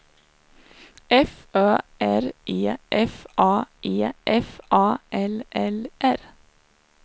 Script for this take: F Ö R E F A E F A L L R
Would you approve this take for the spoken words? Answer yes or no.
yes